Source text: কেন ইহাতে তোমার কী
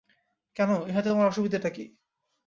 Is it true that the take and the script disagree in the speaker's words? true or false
true